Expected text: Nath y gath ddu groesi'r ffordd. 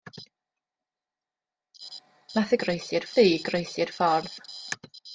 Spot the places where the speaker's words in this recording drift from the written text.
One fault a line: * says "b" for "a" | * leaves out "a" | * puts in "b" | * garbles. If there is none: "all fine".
* says "groesi'r" for "gath"